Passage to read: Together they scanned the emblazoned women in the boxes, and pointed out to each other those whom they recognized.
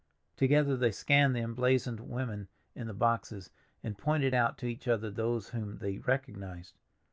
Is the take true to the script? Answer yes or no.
yes